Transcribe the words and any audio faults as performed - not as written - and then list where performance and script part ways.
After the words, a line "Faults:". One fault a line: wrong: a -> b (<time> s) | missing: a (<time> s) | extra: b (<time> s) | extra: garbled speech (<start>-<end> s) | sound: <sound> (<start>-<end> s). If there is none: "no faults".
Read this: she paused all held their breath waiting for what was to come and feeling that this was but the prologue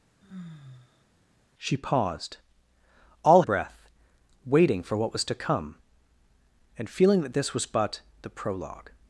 she paused all breath waiting for what was to come and feeling that this was but the prologue
Faults:
sound: sigh (0.2-1.0 s)
missing: held their (3.4 s)